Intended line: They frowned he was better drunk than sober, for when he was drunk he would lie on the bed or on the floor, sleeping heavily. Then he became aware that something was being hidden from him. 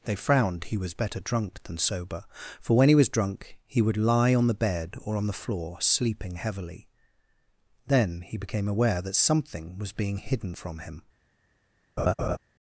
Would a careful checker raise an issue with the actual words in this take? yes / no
no